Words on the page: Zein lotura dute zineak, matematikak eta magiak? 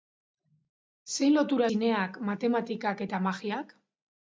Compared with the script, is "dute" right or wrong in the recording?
wrong